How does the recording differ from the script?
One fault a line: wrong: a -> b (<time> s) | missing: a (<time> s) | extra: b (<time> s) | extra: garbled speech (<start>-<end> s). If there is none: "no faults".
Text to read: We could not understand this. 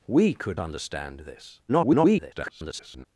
missing: not (0.6 s)
extra: garbled speech (1.7-3.1 s)